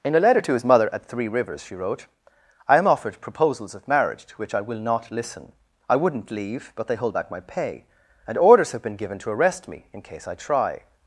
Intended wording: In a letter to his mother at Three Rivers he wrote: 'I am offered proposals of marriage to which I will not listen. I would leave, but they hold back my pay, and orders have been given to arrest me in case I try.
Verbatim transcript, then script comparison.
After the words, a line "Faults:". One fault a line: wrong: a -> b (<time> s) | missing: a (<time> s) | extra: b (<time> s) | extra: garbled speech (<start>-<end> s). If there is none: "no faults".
In a letter to his mother at Three Rivers she wrote: 'I am offered proposals of marriage to which I will not listen. I wouldn't leave, but they hold back my pay, and orders have been given to arrest me in case I try.
Faults:
wrong: he -> she (1.6 s)
wrong: would -> wouldn't (6.0 s)